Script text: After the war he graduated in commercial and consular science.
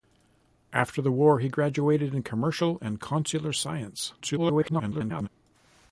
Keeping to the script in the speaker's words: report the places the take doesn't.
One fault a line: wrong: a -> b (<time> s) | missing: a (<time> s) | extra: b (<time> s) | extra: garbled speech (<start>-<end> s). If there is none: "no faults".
extra: garbled speech (4.2-5.3 s)